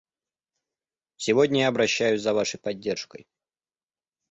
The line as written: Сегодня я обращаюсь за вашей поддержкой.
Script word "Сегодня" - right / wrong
right